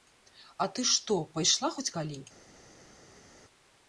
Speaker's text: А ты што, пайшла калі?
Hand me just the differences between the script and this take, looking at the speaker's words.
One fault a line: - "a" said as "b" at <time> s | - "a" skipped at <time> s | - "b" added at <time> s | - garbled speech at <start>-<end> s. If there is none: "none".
- "хоць" added at 1.8 s